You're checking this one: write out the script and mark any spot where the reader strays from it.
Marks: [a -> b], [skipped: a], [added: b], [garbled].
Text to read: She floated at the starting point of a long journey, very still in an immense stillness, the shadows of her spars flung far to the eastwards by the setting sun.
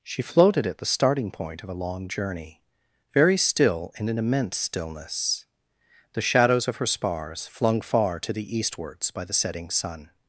She floated at the starting point of a long journey, very still in an immense stillness, the shadows of her spars flung far to the eastwards by the setting sun.